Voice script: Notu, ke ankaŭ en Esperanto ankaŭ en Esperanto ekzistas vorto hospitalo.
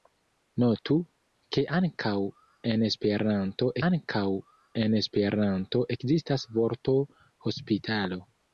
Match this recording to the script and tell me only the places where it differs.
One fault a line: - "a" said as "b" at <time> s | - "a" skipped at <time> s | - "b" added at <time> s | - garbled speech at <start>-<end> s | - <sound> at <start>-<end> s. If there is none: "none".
none